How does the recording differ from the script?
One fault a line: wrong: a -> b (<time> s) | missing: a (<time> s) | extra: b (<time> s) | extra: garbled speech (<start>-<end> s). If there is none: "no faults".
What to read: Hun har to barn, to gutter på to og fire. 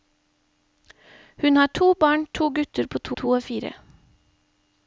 extra: to (3.1 s)